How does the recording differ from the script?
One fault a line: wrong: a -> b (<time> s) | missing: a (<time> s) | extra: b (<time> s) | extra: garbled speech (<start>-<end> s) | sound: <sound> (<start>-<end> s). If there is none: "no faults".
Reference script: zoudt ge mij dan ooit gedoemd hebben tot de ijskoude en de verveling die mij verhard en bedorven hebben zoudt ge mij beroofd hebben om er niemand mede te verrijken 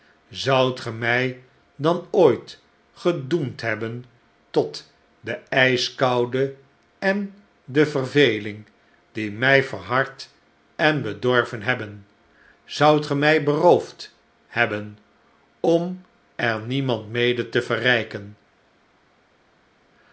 no faults